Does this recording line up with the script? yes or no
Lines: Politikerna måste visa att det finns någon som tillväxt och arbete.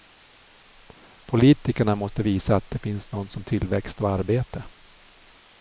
yes